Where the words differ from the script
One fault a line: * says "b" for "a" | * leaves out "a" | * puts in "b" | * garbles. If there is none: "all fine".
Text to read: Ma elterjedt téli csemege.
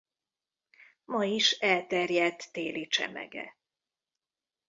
* puts in "is"